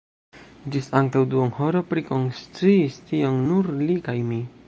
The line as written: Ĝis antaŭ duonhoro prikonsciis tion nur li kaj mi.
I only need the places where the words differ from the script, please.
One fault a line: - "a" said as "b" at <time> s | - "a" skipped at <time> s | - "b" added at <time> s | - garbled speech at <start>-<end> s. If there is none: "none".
none